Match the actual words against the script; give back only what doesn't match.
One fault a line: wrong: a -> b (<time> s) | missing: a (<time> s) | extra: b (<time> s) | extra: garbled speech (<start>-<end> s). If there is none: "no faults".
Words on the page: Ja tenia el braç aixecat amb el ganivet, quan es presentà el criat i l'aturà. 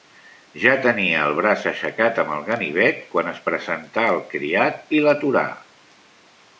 no faults